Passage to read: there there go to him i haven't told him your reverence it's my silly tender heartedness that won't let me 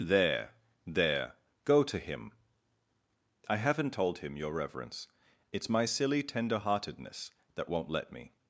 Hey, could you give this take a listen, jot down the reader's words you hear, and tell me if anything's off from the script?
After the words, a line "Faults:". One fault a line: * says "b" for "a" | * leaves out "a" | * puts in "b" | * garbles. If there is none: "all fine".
there there go to him i haven't told him your reverence it's my silly tender heartedness that won't let me
Faults:
all fine